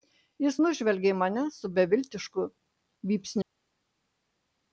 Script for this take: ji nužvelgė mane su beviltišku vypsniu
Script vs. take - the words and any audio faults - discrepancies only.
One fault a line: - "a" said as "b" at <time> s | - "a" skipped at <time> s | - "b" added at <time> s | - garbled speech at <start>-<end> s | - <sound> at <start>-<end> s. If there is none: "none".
- "ji" said as "jis" at 0.5 s